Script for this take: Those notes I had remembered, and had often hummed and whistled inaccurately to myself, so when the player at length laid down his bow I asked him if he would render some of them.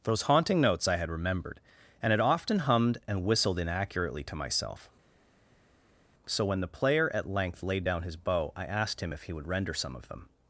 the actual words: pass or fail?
fail